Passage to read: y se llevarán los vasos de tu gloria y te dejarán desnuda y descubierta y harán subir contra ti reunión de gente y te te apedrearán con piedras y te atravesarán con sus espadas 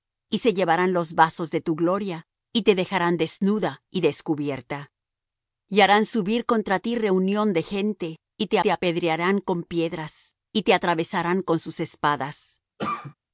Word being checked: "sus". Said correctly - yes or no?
yes